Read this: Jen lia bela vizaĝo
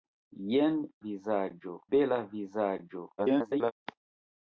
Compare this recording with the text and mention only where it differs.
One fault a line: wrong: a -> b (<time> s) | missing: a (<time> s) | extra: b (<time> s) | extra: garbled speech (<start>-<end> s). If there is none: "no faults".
wrong: lia -> vizaĝo (1.1 s)
extra: garbled speech (3.2-3.7 s)